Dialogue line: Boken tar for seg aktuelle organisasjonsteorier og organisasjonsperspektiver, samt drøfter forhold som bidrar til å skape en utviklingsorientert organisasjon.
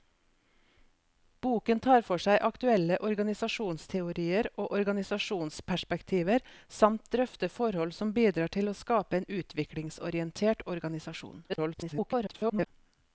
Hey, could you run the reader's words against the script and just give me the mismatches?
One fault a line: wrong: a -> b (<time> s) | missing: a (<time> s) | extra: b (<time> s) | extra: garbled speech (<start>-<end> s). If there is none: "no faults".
extra: garbled speech (11.5-12.7 s)